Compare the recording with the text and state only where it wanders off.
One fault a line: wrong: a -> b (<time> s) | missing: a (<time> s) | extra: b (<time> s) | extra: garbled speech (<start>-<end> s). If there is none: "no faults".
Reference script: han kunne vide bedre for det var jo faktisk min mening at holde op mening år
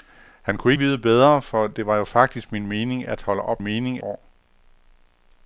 no faults